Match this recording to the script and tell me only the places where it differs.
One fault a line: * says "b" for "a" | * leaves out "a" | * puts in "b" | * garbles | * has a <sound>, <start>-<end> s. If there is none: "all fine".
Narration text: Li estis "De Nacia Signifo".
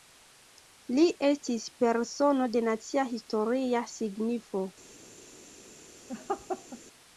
* puts in "Persono"
* puts in "Historia"
* has a laugh, 6.1-6.8 s